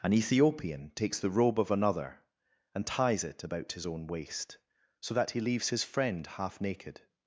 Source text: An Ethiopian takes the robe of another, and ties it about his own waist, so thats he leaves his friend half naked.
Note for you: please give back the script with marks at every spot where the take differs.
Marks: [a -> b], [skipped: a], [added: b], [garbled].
An Ethiopian takes the robe of another, and ties it about his own waist, so [thats -> that] he leaves his friend half naked.